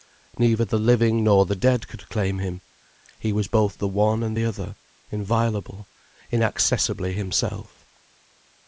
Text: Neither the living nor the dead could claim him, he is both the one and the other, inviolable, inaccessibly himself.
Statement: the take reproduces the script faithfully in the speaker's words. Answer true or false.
false